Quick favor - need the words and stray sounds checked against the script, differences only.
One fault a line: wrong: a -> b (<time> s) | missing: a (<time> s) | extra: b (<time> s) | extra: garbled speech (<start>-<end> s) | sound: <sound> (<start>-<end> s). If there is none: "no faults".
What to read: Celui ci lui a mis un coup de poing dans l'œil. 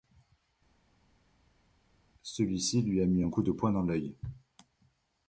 no faults